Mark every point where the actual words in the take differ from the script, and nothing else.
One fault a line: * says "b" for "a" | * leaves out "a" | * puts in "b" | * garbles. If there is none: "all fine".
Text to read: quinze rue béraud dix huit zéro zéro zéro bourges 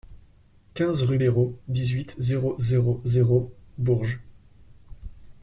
all fine